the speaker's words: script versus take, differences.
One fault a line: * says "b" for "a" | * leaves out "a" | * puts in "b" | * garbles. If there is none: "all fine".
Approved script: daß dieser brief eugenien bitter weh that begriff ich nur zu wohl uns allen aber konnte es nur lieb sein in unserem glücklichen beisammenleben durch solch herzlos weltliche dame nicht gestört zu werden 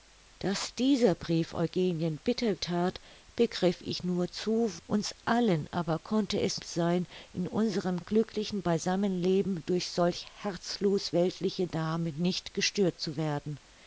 * leaves out "weh"
* leaves out "wohl"
* leaves out "nur lieb"